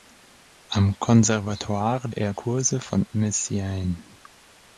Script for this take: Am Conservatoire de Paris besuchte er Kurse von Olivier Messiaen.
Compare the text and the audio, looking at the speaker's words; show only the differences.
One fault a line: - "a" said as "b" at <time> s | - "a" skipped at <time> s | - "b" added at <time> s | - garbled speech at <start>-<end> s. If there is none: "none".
- "de Paris besuchte" skipped at 2.1 s
- "Olivier" skipped at 3.0 s